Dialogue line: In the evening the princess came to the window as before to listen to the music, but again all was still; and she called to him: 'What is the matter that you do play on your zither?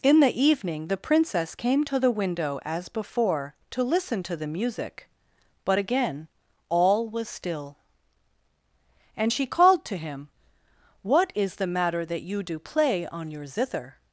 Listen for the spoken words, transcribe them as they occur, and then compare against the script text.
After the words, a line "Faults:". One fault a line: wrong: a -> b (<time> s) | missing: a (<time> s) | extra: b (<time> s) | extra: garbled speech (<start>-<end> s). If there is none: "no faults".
In the evening the princess came to the window as before to listen to the music, but again all was still; and she called to him: 'What is the matter that you do play on your zither?
Faults:
no faults